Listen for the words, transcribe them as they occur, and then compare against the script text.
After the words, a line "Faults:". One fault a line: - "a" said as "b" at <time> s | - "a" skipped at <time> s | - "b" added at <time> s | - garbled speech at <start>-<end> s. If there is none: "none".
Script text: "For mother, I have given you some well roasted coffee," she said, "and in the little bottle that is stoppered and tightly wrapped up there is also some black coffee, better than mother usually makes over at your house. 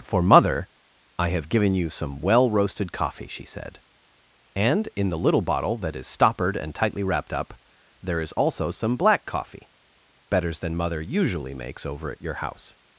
"For mother, I have given you some well roasted coffee," she said, "and in the little bottle that is stoppered and tightly wrapped up there is also some black coffee, betters than mother usually makes over at your house.
Faults:
- "better" said as "betters" at 10.3 s